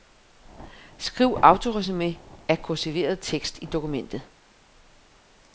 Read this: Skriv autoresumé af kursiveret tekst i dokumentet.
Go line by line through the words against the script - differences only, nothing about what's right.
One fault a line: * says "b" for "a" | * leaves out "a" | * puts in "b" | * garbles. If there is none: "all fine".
all fine